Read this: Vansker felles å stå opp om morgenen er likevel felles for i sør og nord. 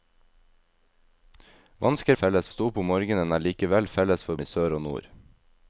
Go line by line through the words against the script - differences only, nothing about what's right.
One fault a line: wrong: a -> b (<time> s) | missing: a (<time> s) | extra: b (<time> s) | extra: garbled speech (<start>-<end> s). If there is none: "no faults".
no faults